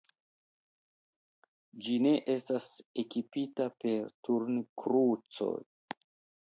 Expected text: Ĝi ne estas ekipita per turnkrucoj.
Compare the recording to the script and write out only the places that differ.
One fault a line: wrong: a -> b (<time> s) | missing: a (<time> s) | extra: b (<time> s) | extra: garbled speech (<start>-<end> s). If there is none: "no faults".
no faults